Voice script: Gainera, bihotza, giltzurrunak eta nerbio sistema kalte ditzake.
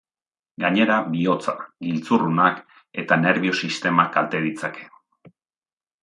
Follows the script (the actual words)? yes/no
yes